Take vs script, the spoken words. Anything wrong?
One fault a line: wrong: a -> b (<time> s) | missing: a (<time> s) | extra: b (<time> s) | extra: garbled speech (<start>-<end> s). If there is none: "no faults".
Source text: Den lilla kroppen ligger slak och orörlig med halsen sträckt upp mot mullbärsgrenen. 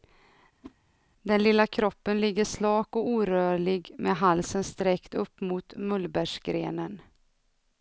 no faults